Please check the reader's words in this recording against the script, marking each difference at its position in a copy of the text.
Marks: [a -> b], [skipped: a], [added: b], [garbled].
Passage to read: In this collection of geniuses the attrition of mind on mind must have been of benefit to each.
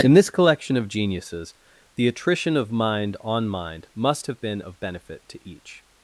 In this collection of geniuses the attrition of mind on mind must have been of benefit to each.